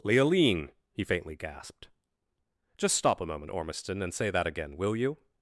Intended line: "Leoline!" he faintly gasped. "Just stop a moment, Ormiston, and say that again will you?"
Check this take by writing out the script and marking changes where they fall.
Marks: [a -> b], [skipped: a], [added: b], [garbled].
"Leoline!" he faintly gasped. "Just stop a moment, Ormiston, and say that again will you?"